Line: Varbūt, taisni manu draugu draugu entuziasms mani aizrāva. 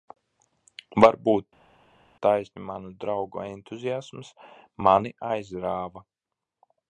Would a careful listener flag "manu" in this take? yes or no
no